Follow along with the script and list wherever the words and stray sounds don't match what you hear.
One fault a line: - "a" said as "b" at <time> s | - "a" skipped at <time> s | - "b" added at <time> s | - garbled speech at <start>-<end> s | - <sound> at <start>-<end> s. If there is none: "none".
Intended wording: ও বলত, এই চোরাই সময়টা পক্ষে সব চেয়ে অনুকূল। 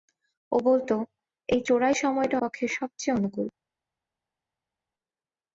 none